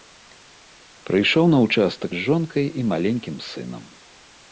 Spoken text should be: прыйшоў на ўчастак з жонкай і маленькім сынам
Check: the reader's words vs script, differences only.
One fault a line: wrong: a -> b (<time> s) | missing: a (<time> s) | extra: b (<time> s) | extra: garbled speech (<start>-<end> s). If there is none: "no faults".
no faults